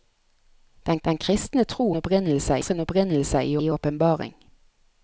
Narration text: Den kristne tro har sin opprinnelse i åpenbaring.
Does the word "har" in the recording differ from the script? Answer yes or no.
yes